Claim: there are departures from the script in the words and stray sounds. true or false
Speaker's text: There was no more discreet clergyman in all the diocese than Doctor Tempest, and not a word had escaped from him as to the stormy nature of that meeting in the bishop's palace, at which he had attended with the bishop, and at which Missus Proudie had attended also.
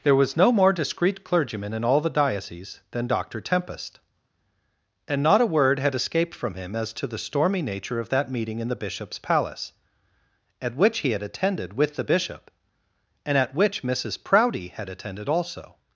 false